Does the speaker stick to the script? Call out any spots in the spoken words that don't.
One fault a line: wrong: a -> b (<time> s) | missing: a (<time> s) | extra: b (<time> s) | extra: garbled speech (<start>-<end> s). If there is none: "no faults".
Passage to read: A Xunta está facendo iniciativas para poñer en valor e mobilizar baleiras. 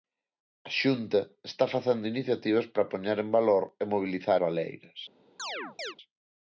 no faults